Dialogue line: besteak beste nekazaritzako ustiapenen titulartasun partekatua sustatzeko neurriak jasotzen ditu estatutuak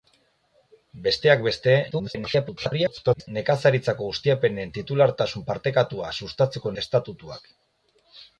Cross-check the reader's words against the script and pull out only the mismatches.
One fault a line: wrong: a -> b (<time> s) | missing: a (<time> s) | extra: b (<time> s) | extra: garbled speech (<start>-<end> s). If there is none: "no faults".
extra: garbled speech (1.9-3.3 s)
missing: neurriak jasotzen ditu (6.8 s)